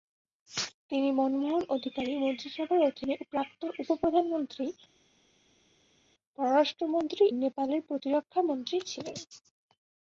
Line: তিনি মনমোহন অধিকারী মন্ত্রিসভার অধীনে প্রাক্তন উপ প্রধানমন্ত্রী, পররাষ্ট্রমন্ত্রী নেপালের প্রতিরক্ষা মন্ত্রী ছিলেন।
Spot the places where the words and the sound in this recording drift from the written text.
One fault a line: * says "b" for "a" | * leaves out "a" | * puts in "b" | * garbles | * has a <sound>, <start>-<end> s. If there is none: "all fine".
all fine